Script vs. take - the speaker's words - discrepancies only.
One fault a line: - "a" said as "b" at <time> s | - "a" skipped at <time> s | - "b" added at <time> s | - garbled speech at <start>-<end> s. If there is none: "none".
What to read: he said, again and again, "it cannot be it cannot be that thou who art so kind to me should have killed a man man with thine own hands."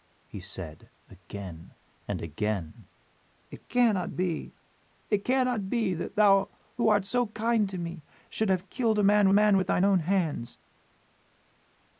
none